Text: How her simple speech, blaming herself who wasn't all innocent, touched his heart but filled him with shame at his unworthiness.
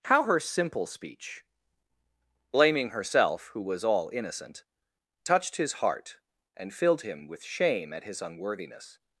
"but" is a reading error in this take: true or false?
true